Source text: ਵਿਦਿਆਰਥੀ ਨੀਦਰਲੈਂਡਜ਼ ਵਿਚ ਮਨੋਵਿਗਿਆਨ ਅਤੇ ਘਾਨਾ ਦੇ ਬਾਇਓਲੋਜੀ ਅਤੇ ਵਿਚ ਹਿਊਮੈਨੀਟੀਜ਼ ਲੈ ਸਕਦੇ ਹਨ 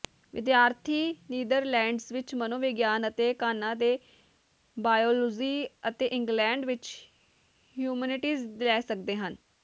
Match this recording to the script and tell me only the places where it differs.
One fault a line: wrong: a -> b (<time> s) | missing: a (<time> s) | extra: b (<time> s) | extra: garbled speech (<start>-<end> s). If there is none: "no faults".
extra: ਇੰਗਲੈਂਡ (6.1 s)